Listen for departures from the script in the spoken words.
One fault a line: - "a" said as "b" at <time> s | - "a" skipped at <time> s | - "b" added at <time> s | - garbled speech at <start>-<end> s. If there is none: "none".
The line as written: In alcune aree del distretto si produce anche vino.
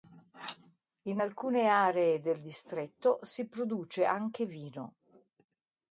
none